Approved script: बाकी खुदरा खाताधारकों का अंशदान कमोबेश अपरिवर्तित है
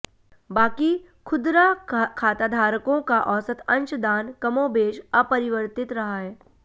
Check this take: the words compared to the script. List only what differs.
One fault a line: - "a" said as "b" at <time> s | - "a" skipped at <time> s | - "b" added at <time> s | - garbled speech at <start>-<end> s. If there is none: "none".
- "औसत" added at 3.3 s
- "रहा" added at 5.9 s